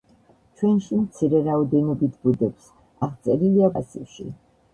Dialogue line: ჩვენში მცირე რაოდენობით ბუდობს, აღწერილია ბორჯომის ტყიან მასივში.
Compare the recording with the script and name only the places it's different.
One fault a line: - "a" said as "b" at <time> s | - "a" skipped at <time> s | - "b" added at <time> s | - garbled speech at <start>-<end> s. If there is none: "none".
- "ბორჯომის ტყიან" skipped at 3.8 s